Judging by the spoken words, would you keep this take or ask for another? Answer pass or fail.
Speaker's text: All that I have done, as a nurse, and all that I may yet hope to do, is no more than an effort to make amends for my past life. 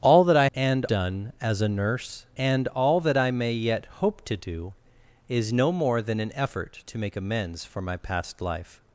fail